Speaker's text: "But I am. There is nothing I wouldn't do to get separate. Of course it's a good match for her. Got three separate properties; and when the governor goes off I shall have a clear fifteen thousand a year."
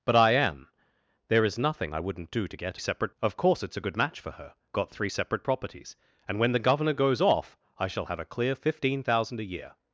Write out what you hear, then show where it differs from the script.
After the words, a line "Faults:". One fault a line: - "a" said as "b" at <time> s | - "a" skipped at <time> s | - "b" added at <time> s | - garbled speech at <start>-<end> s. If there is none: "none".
"But I am. There is nothing I wouldn't do to get separate. Of course it's a good match for her. Got three separate properties; and when the governor goes off I shall have a clear fifteen thousand a year."
Faults:
none